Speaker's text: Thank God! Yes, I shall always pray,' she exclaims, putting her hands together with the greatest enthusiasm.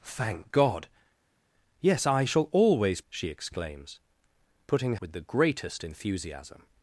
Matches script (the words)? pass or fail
fail